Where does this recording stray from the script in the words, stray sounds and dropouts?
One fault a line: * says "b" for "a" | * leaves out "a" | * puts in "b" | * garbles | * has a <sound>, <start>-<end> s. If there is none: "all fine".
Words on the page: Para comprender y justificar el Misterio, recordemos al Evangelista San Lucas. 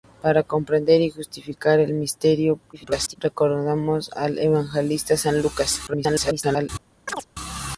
* garbles
* garbles
* has a chirp, 7.1-7.3 s